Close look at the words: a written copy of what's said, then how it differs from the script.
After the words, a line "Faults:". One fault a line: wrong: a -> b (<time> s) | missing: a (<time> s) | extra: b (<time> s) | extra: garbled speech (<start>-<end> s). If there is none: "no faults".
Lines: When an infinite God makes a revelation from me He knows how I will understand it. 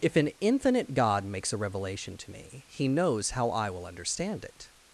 If an infinite God makes a revelation to me He knows how I will understand it.
Faults:
wrong: When -> If (0.0 s)
wrong: from -> to (2.2 s)